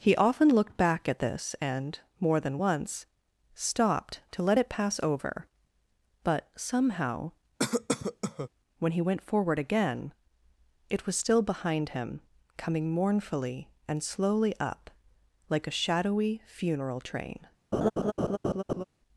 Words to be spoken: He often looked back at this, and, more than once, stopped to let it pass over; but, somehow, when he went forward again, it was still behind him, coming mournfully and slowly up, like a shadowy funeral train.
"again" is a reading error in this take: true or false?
false